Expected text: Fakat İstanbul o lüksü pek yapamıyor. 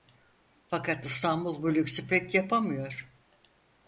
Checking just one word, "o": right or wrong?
wrong